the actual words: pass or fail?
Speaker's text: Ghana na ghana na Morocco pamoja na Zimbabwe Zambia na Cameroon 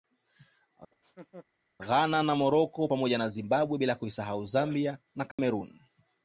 fail